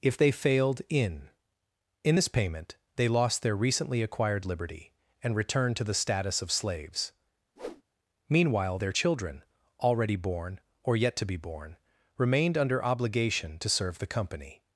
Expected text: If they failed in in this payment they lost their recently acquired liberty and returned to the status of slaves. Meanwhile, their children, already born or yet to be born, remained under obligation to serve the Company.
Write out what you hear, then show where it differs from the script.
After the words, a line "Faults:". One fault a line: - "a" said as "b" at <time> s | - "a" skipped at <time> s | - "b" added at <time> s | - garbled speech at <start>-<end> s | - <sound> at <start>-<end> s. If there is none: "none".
If they failed in in this payment they lost their recently acquired liberty and returned to the status of slaves. Meanwhile, their children, already born or yet to be born, remained under obligation to serve the Company.
Faults:
- whoosh at 7.6-7.8 s